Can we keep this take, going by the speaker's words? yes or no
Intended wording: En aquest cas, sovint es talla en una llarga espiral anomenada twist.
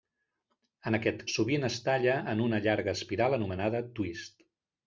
no